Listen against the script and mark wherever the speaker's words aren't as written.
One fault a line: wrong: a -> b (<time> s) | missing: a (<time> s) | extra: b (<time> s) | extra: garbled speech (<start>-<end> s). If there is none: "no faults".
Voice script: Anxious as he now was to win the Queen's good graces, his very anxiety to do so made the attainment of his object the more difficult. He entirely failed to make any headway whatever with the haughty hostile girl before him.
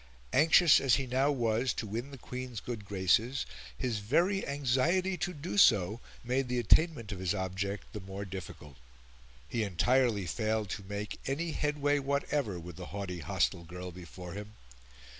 no faults